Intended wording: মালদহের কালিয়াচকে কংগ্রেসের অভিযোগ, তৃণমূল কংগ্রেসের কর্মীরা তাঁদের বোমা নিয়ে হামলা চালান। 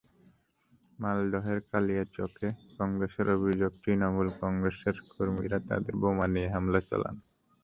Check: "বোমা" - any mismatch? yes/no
no